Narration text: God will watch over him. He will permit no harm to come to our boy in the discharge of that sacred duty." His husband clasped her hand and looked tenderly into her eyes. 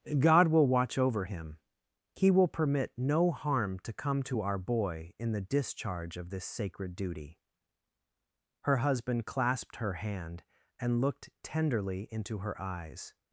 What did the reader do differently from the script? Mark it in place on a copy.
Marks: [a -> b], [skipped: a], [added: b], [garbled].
God will watch over him. He will permit no harm to come to our boy in the discharge of [that -> this] sacred duty." [His -> Her] husband clasped her hand and looked tenderly into her eyes.